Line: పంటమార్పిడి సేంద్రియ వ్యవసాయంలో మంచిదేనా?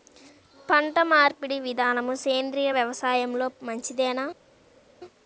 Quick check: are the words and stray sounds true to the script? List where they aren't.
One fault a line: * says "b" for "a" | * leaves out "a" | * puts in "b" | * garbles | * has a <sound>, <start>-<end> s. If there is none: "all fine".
* puts in "విధానము"